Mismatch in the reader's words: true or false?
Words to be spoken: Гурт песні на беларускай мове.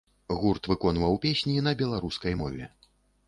true